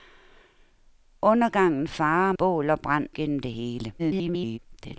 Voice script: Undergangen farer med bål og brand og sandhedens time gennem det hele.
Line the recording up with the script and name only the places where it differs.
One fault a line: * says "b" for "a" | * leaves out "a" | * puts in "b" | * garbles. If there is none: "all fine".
* leaves out "med"
* leaves out "og sandhedens time"
* garbles